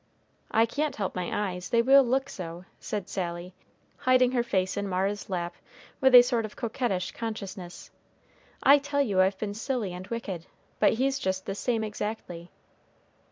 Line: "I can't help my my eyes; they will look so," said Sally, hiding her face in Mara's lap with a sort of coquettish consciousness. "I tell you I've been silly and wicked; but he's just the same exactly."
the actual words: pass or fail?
fail